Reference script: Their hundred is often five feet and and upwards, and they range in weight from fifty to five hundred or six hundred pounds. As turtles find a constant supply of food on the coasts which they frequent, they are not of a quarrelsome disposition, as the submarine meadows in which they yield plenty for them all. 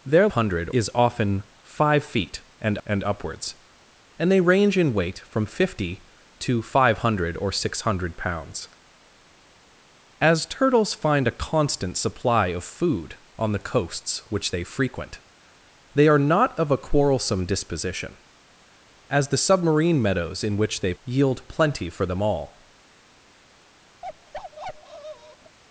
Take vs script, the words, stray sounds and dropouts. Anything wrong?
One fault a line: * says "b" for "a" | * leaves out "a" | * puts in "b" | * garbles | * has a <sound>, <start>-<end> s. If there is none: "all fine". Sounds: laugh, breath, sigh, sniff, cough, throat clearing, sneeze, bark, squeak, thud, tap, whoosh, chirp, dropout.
* has a bark, 24.0-25.6 s